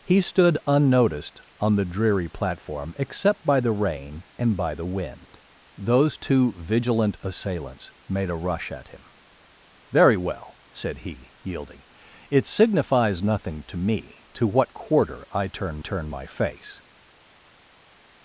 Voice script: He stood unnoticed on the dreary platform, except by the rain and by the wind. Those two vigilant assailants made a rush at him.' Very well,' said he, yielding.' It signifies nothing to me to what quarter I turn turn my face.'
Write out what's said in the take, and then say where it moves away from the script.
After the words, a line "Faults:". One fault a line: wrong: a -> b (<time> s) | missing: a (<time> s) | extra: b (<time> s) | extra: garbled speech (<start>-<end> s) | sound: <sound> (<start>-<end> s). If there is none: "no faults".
He stood unnoticed on the dreary platform, except by the rain and by the wind. Those two vigilant assailants made a rush at him.' Very well,' said he, yielding.' It signifies nothing to me to what quarter I turn turn my face.'
Faults:
no faults